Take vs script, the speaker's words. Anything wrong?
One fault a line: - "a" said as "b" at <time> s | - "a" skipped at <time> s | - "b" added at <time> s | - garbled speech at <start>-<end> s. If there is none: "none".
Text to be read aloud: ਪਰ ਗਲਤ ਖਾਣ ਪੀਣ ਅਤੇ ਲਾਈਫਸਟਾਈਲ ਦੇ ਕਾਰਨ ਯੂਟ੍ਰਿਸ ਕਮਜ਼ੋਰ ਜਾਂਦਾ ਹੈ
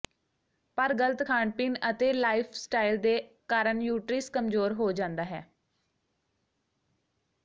- "ਹੋ" added at 4.7 s